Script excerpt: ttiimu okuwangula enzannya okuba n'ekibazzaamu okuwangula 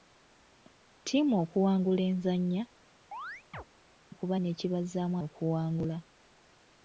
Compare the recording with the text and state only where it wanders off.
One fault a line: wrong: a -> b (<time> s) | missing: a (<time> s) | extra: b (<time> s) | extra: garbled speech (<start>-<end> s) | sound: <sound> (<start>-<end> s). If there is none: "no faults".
sound: chirp (3.1-3.6 s)